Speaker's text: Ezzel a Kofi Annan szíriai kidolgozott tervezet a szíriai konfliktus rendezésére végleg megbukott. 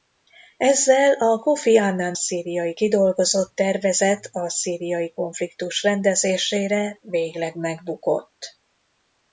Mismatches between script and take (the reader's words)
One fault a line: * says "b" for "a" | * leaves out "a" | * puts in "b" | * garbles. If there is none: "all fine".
all fine